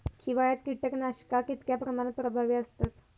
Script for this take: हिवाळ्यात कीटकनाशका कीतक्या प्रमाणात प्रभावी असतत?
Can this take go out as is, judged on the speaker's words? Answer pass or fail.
pass